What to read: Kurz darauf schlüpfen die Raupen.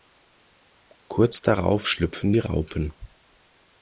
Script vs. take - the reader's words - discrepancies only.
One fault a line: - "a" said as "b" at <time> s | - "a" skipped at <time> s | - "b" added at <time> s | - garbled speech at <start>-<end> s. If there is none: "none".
none